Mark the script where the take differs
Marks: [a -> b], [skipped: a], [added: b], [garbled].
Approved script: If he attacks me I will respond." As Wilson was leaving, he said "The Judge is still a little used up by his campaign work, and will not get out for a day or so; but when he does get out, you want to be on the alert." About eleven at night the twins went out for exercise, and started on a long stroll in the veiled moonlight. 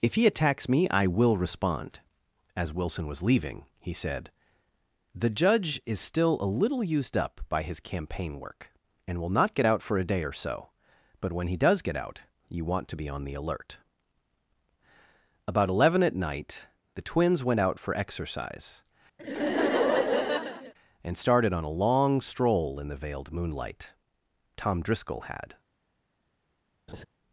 If he attacks me I will respond." As Wilson was leaving, he said "The Judge is still a little used up by his campaign work, and will not get out for a day or so; but when he does get out, you want to be on the alert." About eleven at night the twins went out for exercise, and started on a long stroll in the veiled moonlight. [added: Tom Driscoll had]